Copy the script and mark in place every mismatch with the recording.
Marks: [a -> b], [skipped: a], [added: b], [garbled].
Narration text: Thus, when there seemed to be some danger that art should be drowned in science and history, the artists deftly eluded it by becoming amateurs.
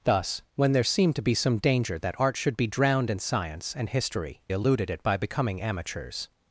Thus, when there seemed to be some danger that art should be drowned in science and history, [skipped: the artists deftly] eluded it by becoming amateurs.